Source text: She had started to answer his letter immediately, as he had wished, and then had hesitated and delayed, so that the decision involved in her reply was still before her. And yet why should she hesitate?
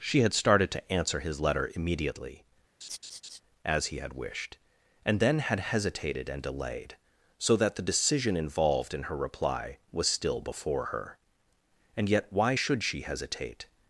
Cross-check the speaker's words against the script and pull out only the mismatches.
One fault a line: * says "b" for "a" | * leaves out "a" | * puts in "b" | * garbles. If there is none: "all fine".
all fine